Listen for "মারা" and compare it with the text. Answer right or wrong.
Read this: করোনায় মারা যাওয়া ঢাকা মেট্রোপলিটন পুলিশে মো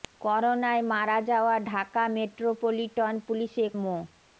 right